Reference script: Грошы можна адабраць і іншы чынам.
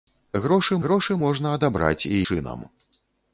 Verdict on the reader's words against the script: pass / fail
fail